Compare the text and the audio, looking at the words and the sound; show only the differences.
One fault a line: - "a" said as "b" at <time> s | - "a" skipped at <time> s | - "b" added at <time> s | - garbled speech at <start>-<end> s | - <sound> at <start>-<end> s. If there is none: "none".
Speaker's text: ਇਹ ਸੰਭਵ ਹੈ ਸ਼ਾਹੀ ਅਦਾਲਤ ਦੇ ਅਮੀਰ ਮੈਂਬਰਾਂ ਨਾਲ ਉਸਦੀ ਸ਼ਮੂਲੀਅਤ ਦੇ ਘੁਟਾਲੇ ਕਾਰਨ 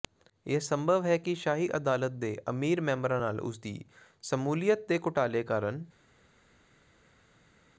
- "ਕਿ" added at 1.2 s